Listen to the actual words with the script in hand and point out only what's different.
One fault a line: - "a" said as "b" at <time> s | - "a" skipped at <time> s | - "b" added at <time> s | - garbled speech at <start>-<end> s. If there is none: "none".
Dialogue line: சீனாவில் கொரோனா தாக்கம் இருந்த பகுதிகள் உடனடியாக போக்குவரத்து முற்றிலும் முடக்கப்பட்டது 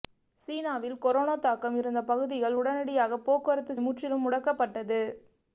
none